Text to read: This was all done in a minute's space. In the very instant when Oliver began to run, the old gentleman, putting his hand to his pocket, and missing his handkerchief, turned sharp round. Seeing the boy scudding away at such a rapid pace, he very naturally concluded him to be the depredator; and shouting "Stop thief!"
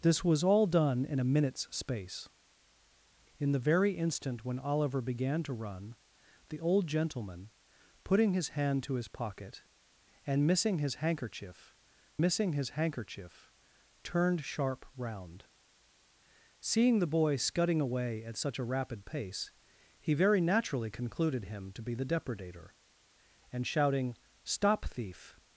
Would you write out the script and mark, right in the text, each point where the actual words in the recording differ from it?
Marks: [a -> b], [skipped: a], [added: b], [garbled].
This was all done in a minute's space. In the very instant when Oliver began to run, the old gentleman, putting his hand to his pocket, and missing his handkerchief, [added: missing his handkerchief] turned sharp round. Seeing the boy scudding away at such a rapid pace, he very naturally concluded him to be the depredator; and shouting "Stop thief!"